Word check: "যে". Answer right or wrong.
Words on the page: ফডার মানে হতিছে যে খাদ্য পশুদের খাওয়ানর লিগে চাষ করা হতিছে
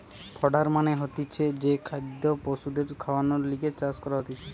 right